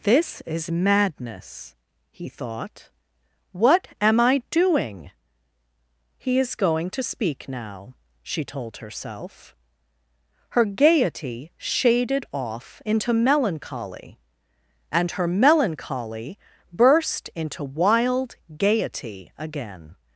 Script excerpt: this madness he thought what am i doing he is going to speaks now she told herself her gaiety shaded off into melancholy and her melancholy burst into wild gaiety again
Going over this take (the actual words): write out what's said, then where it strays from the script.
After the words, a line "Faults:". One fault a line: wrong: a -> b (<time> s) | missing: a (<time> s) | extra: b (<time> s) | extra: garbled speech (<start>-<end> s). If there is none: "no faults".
this is madness he thought what am i doing he is going to speak now she told herself her gaiety shaded off into melancholy and her melancholy burst into wild gaiety again
Faults:
extra: is (0.5 s)
wrong: speaks -> speak (7.0 s)